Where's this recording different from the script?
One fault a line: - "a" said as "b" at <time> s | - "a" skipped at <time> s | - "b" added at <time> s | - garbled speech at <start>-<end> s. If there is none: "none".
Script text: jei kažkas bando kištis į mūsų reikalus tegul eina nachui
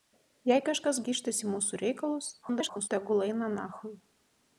- "bando" skipped at 1.0 s
- garbled speech at 2.4-2.9 s